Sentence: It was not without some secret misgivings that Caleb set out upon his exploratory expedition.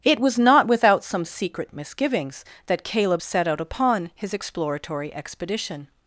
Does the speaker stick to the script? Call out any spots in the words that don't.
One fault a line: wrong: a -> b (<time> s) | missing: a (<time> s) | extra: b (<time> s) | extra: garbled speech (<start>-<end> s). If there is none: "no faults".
no faults